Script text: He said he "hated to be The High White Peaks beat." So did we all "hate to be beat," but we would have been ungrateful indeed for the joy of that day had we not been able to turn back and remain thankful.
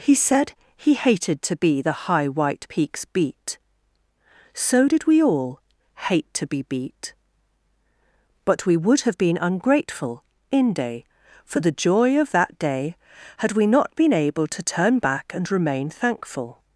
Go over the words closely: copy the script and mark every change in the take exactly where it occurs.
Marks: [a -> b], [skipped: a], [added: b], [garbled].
He said he "hated to be The High White Peaks beat." So did we all "hate to be beat," but we would have been ungrateful [indeed -> inde] for the joy of that day had we not been able to turn back and remain thankful.